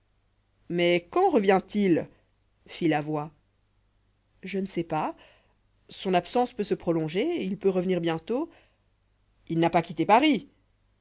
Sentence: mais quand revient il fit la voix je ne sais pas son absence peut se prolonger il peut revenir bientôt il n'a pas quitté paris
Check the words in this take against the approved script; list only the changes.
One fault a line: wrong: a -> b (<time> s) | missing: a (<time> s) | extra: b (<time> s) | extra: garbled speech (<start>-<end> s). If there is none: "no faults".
no faults